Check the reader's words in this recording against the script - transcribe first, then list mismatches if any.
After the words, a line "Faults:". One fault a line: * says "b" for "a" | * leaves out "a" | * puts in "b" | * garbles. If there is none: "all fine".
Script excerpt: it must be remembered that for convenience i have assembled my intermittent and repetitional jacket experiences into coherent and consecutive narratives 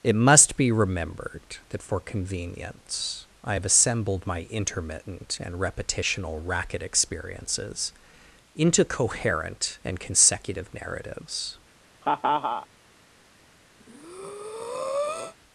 it must be remembered that for convenience i have assembled my intermittent and repetitional racket experiences into coherent and consecutive narratives
Faults:
* says "racket" for "jacket"